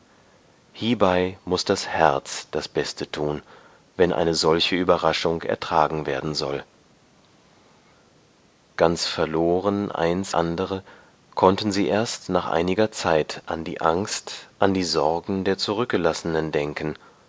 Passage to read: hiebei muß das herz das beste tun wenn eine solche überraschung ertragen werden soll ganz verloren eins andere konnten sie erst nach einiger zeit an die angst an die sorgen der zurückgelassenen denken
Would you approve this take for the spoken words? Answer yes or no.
yes